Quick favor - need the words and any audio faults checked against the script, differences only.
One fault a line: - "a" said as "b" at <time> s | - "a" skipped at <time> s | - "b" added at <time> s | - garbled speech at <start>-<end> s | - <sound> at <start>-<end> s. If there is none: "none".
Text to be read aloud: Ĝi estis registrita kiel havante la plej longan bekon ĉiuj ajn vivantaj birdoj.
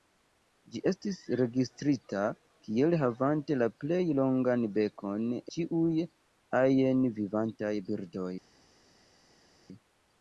none